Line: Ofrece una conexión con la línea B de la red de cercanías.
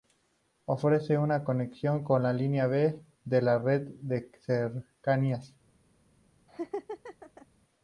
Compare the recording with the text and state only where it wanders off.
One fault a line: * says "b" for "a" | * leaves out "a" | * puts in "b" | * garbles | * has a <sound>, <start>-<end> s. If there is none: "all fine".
* has a laugh, 6.5-7.5 s